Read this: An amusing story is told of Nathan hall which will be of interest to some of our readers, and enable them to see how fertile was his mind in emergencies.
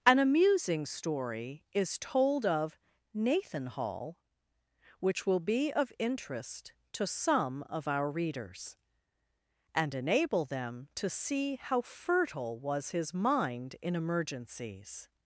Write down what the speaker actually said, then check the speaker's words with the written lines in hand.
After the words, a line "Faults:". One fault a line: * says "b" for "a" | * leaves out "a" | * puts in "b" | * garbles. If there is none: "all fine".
An amusing story is told of Nathan hall which will be of interest to some of our readers, and enable them to see how fertile was his mind in emergencies.
Faults:
all fine